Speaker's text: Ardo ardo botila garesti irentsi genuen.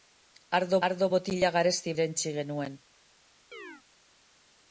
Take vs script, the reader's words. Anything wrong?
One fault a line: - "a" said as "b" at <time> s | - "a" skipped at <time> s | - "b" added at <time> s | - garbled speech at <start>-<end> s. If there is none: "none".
none